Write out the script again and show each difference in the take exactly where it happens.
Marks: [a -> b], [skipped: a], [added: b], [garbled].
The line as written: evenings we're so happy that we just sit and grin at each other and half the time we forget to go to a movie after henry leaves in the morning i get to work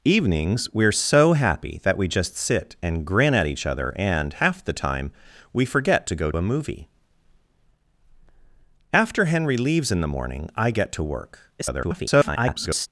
evenings we're so happy that we just sit and grin at each other and half the time we forget to go [skipped: to] a movie after henry leaves in the morning i get to work [garbled]